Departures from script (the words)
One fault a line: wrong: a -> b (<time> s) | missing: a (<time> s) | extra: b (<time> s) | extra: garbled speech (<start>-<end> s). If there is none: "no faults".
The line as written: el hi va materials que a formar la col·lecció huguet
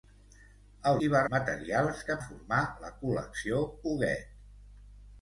no faults